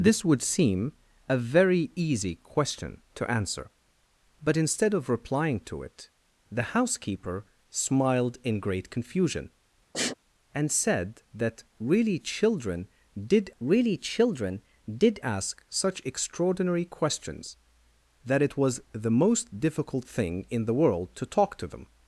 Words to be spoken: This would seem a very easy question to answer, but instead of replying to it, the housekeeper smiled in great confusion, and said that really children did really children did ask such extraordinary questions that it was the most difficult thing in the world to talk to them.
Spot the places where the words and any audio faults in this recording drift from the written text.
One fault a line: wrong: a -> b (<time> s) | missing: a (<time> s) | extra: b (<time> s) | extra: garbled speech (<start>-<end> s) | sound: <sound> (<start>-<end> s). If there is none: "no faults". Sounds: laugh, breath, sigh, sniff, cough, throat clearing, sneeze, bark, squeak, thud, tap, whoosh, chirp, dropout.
sound: sniff (9.9-10.1 s)